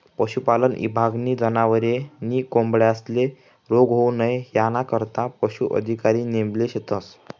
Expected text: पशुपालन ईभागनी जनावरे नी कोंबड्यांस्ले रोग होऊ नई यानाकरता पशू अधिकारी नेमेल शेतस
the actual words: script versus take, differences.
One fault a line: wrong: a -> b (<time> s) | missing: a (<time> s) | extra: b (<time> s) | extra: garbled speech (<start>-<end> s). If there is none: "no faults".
no faults